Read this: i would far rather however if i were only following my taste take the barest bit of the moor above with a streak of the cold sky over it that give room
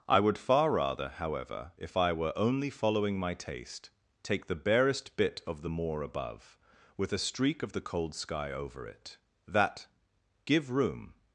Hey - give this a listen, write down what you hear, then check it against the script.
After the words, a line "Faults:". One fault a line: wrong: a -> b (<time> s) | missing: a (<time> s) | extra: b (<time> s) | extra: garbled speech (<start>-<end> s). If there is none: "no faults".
i would far rather however if i were only following my taste take the barest bit of the moor above with a streak of the cold sky over it that give room
Faults:
no faults